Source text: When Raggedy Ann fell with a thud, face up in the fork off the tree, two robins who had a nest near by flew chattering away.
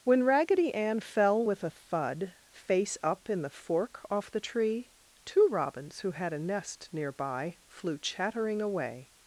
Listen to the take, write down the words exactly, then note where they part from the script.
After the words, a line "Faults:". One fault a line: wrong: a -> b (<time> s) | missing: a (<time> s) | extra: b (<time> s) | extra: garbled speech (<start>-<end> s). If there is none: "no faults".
When Raggedy Ann fell with a thud, face up in the fork off the tree, two robins who had a nest near by flew chattering away.
Faults:
no faults